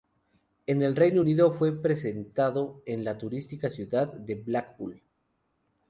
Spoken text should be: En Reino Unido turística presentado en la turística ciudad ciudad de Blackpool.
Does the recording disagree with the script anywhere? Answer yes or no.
yes